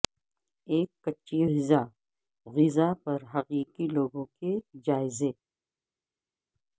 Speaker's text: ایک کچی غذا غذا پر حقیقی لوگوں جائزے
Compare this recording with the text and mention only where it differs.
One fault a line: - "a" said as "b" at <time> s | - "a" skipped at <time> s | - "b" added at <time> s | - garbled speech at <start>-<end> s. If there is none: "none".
- "کے" added at 4.4 s